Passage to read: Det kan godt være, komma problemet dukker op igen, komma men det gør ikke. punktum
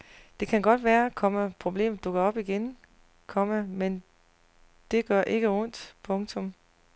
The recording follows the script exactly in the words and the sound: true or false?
false